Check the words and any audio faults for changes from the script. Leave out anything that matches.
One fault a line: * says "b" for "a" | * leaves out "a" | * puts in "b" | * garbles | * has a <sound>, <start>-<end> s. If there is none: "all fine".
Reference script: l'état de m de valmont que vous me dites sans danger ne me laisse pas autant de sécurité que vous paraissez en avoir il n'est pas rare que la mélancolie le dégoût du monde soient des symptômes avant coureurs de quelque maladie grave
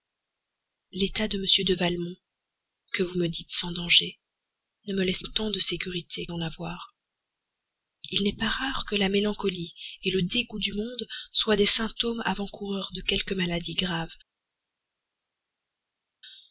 * leaves out "pas"
* leaves out "que vous paraissez"